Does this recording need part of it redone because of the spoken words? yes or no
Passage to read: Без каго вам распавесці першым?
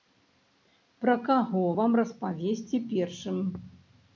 yes